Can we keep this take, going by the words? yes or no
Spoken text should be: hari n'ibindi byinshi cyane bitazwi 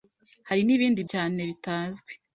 no